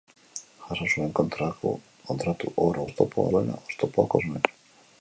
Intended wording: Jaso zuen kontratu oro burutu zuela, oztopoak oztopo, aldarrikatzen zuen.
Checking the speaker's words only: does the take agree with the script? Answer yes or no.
no